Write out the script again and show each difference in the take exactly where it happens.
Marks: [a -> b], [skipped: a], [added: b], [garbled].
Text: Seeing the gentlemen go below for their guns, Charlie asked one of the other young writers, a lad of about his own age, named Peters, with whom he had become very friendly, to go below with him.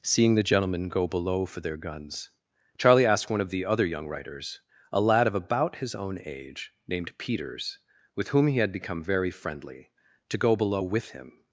Seeing the gentlemen go below for their guns, Charlie asked one of the other young writers, a lad of about his own age, named Peters, with whom he had become very friendly, to go below with him.